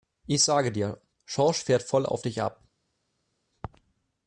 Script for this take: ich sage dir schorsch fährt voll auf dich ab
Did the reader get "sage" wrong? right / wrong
right